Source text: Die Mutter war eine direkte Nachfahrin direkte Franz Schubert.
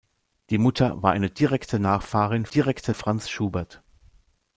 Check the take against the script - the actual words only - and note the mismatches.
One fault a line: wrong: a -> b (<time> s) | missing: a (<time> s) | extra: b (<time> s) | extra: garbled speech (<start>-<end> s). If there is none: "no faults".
no faults